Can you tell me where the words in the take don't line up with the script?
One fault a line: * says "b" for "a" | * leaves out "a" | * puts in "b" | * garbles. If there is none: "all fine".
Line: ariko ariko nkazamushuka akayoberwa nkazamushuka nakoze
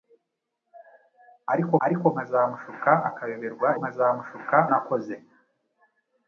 all fine